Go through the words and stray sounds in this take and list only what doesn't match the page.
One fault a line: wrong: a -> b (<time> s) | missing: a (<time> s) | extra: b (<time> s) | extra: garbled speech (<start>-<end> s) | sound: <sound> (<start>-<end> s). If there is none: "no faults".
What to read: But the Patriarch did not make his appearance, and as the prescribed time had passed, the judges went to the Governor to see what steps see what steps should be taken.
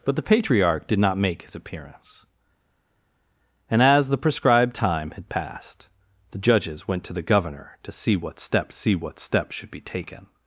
no faults